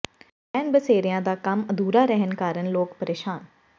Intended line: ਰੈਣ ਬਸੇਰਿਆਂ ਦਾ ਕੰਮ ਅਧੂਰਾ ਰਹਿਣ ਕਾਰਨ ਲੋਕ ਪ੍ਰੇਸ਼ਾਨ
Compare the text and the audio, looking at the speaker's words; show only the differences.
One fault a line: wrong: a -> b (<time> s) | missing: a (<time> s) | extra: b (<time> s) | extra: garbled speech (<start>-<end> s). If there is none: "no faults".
no faults